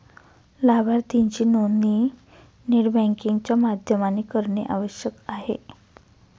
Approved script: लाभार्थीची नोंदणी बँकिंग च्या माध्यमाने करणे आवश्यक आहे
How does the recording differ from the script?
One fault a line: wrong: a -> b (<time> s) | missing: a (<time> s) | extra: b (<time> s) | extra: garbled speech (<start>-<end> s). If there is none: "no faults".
extra: नेट (2.7 s)